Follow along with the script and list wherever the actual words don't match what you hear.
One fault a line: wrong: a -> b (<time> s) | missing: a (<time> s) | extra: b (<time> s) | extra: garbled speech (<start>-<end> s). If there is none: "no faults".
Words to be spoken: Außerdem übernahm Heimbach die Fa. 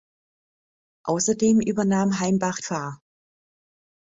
missing: die (2.6 s)